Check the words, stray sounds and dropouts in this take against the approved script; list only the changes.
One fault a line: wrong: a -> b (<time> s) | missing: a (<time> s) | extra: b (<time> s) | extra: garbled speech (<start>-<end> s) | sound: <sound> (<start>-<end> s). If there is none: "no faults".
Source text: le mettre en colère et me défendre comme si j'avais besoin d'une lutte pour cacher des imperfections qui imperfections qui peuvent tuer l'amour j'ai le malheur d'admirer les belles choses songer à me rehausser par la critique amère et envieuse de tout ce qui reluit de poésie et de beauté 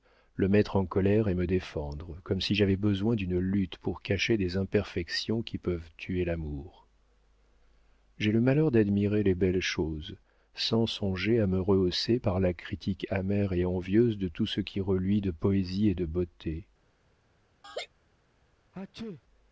missing: imperfections qui (5.6 s)
extra: sans (10.6 s)
sound: laugh (17.6-17.9 s)
sound: sneeze (18.7-19.2 s)